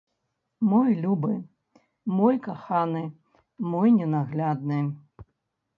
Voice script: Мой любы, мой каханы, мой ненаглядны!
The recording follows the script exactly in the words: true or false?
true